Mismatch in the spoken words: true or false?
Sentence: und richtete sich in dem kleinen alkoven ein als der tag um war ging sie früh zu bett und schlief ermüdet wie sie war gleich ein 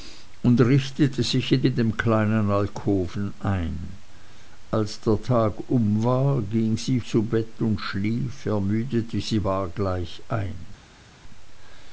true